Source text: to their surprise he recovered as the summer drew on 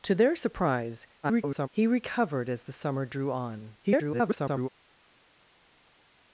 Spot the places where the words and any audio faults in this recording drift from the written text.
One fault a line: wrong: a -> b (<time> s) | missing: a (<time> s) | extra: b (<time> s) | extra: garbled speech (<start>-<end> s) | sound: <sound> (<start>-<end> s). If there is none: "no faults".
extra: garbled speech (1.2-1.7 s)
extra: garbled speech (3.8-4.7 s)